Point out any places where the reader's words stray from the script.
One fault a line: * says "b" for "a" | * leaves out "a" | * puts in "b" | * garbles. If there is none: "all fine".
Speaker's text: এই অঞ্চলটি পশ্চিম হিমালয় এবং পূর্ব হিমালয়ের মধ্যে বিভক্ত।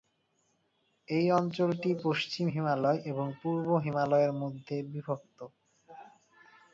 all fine